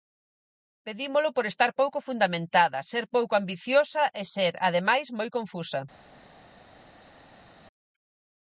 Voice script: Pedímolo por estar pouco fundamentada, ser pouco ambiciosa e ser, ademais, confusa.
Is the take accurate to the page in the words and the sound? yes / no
no